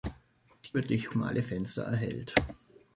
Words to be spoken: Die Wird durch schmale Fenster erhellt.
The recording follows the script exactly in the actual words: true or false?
true